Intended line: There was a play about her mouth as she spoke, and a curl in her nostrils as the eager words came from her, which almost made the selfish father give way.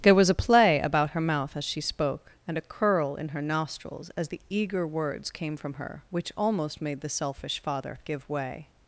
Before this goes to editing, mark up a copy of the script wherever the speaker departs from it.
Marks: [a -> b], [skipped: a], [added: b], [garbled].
There was a play about her mouth as she spoke, and a curl in her nostrils as the eager words came from her, which almost made the selfish father give way.